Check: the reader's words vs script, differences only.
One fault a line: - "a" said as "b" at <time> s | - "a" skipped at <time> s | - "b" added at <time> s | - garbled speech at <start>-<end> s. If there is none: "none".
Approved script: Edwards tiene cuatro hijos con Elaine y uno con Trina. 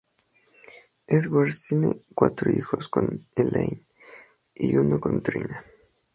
none